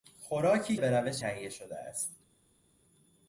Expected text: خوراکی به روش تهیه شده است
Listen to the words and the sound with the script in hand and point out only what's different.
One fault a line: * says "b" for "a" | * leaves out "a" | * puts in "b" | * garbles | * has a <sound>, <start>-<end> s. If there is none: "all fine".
all fine